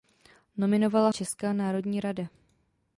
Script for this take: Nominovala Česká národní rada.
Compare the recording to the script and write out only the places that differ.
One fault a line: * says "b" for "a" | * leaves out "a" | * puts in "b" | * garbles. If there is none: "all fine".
all fine